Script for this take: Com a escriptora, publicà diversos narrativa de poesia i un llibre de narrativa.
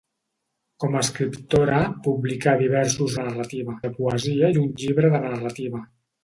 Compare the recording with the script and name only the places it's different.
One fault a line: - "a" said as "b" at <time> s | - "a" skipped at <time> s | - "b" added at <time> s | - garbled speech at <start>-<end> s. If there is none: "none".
none